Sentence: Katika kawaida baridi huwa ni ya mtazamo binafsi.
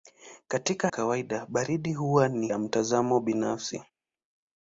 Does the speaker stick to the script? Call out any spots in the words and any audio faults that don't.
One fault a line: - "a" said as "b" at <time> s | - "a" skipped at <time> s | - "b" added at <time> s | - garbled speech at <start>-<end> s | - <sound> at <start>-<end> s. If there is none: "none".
none